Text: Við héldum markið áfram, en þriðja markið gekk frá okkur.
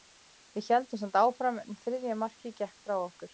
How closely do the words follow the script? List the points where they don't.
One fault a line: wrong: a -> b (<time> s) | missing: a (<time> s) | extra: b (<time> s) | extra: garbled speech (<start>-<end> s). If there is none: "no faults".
wrong: markið -> samt (1.0 s)